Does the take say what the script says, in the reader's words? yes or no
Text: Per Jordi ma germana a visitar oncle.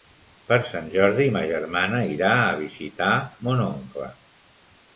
no